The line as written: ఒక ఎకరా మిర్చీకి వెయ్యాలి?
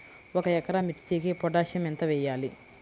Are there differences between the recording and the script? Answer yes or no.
yes